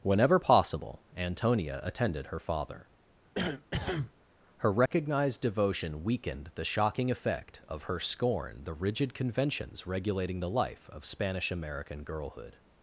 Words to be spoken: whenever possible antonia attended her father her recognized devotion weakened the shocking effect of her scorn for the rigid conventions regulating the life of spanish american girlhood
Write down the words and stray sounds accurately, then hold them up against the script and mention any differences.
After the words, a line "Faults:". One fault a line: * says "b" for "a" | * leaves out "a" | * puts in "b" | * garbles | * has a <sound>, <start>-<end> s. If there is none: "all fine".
whenever possible antonia attended her father her recognized devotion weakened the shocking effect of her scorn the rigid conventions regulating the life of spanish american girlhood
Faults:
* has a cough, 3.3-4.1 s
* has a dropout, 4.9-4.9 s
* leaves out "for"